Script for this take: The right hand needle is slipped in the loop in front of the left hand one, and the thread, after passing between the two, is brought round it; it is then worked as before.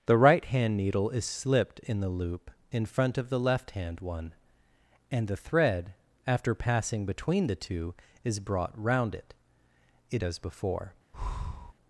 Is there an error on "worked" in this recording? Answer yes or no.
yes